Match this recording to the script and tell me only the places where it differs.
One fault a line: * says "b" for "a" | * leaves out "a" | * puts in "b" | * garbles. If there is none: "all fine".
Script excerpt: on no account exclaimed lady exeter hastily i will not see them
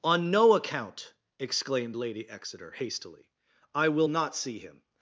* says "him" for "them"